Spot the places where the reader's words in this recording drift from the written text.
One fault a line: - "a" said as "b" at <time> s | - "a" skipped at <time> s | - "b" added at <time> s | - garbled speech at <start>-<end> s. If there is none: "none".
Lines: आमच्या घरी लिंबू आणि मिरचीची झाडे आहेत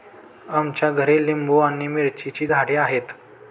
none